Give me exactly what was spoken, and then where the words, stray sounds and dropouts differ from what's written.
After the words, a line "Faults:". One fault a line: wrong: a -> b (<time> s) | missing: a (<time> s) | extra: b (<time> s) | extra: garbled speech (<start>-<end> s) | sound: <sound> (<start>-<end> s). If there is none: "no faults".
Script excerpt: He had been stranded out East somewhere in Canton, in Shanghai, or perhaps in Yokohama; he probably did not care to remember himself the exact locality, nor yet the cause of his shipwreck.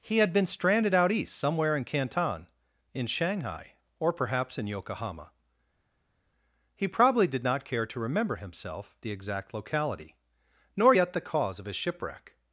He had been stranded out East somewhere in Canton, in Shanghai, or perhaps in Yokohama; he probably did not care to remember himself the exact locality, nor yet the cause of his shipwreck.
Faults:
no faults